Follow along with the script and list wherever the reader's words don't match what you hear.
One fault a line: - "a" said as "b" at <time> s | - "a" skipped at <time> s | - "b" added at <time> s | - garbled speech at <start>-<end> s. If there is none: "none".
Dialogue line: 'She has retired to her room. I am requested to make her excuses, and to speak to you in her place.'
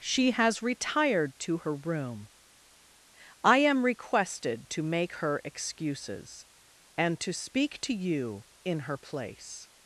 none